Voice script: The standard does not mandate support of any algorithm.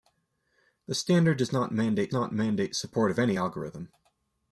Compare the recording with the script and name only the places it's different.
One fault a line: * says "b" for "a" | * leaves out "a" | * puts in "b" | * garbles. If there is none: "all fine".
* puts in "not mandate"